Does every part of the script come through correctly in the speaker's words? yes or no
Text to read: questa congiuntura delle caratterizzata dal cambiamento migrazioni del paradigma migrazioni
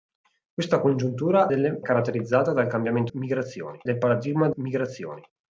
yes